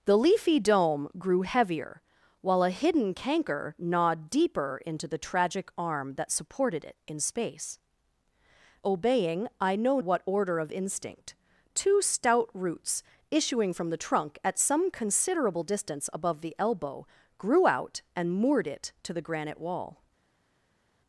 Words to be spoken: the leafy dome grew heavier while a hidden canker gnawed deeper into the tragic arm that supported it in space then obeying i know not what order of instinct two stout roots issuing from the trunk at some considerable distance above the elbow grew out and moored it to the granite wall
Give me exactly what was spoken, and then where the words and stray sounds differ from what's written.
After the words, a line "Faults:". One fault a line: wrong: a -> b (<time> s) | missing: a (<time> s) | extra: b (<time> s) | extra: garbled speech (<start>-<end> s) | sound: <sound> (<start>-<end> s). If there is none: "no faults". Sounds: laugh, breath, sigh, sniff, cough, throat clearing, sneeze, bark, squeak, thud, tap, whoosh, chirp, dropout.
the leafy dome grew heavier while a hidden canker gnawed deeper into the tragic arm that supported it in space obeying i know what order of instinct two stout roots issuing from the trunk at some considerable distance above the elbow grew out and moored it to the granite wall
Faults:
missing: then (7.8 s)
missing: not (10.0 s)